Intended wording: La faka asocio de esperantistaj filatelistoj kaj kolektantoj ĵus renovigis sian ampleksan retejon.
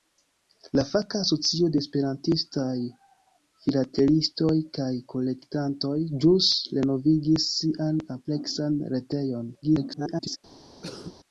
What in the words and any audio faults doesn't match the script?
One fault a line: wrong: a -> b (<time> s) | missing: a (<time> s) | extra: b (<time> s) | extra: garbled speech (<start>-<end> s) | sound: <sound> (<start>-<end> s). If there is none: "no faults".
extra: garbled speech (9.6-10.4 s)
sound: cough (10.8-11.2 s)